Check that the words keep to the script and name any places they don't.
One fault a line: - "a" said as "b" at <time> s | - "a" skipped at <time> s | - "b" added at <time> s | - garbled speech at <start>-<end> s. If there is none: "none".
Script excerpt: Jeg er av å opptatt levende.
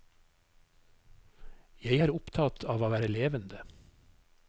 - "opptatt" added at 2.1 s
- "opptatt" said as "være" at 2.9 s